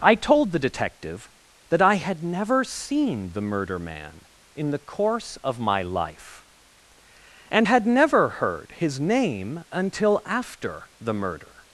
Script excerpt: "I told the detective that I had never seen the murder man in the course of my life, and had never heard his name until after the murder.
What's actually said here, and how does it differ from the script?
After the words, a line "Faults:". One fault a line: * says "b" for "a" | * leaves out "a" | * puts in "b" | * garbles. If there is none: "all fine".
"I told the detective that I had never seen the murder man in the course of my life, and had never heard his name until after the murder.
Faults:
all fine